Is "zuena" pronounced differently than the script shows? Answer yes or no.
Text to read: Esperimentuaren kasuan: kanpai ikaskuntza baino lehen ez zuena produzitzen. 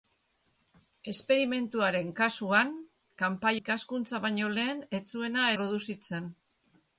no